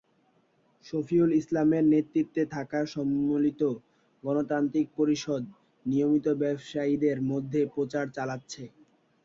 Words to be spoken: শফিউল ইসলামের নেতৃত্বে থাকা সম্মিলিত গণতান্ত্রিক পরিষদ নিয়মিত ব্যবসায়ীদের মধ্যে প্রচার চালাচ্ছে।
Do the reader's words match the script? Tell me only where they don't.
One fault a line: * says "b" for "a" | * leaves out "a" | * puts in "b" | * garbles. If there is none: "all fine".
all fine